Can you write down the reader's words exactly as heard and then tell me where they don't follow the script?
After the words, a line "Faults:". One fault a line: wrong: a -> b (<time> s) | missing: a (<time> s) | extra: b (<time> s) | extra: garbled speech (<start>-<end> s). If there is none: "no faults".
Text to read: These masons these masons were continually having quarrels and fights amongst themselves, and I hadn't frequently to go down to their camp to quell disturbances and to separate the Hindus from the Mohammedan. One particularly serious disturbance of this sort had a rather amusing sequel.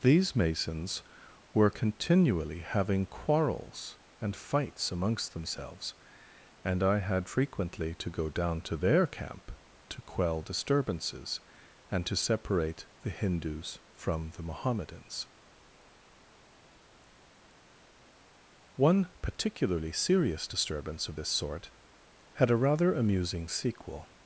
These masons were continually having quarrels and fights amongst themselves, and I had frequently to go down to their camp to quell disturbances and to separate the Hindus from the Mohammedans. One particularly serious disturbance of this sort had a rather amusing sequel.
Faults:
missing: these masons (1.0 s)
wrong: hadn't -> had (7.0 s)
wrong: Mohammedan -> Mohammedans (14.4 s)